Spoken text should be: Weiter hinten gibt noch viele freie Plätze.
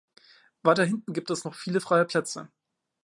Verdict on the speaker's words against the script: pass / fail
fail